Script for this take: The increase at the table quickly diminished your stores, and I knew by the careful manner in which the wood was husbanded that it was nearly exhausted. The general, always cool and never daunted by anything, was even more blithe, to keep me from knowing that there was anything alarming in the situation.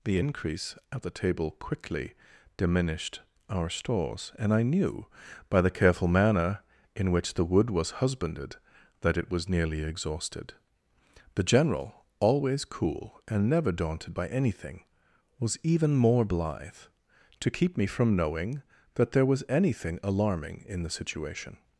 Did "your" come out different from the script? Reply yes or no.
yes